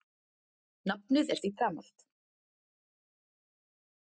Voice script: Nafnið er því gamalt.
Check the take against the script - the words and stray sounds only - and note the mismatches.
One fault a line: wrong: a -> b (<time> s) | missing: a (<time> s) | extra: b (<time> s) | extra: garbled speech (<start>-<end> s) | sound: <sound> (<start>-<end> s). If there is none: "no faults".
no faults